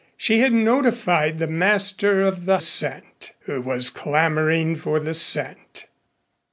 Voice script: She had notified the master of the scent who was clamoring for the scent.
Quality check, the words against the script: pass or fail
pass